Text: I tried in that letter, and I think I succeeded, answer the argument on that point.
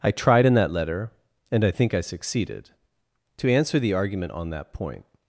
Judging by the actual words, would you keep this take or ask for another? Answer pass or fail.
fail